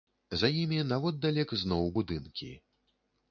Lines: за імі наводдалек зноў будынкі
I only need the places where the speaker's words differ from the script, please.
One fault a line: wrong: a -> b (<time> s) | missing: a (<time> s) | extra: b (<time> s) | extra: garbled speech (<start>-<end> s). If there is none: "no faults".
no faults